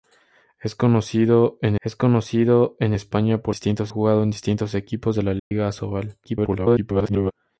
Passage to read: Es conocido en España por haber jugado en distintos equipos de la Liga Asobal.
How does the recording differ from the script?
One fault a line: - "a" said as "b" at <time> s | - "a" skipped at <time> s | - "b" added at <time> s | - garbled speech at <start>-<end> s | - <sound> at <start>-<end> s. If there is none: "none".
- "es conocido en" added at 1.8 s
- "haber" said as "distintos" at 3.5 s
- dropout at 5.4-5.5 s
- garbled speech at 6.2-7.3 s